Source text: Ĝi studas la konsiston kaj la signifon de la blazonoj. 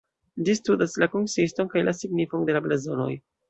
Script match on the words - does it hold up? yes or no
yes